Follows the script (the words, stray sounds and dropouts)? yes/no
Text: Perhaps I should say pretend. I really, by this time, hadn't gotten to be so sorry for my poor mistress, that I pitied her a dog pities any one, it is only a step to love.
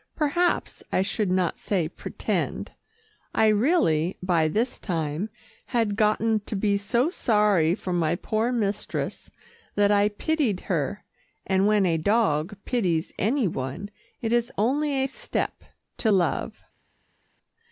no